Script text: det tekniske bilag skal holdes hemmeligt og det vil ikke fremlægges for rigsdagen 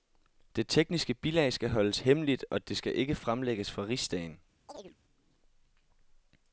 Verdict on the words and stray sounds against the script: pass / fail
fail